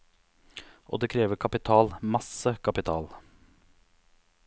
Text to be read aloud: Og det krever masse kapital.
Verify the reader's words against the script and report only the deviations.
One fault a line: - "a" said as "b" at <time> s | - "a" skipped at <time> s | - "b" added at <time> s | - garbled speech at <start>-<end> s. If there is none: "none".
- "kapital" added at 1.4 s